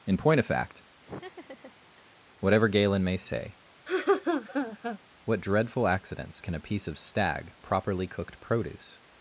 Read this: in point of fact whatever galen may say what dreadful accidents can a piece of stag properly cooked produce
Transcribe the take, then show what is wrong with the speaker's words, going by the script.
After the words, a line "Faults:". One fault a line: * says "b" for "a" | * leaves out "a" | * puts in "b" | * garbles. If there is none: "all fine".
in point of fact whatever galen may say what dreadful accidents can a piece of stag properly cooked produce
Faults:
all fine